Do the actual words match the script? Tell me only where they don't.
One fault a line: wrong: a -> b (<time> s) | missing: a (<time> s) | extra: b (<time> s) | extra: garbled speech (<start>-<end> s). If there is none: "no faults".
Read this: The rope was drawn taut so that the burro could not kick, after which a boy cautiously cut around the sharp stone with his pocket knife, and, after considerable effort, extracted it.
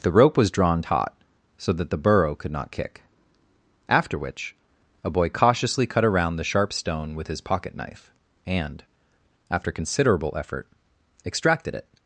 no faults